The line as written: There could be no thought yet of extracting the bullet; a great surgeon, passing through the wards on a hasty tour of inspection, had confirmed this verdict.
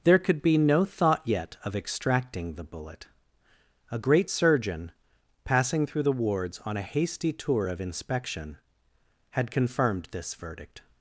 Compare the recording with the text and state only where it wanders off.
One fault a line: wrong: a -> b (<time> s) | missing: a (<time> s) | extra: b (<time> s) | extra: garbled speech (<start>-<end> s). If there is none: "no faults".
no faults